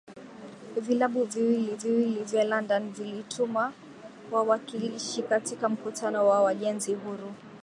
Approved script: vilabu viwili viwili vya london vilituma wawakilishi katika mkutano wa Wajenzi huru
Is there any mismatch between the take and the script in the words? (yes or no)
no